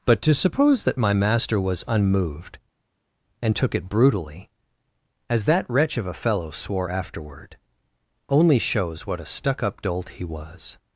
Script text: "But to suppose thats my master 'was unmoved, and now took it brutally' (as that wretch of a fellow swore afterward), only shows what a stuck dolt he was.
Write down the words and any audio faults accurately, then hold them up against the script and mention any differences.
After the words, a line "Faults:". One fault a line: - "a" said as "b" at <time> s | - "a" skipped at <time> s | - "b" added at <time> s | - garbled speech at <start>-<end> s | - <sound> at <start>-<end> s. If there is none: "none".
"But to suppose that my master 'was unmoved, and took it brutally' (as that wretch of a fellow swore afterward), only shows what a stuck up dolt he was.
Faults:
- "thats" said as "that" at 0.8 s
- "now" skipped at 3.5 s
- "up" added at 9.6 s